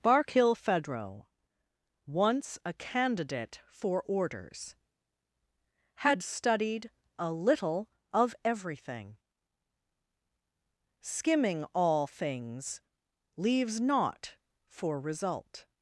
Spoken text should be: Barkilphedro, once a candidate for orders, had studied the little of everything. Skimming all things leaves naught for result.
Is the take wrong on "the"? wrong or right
wrong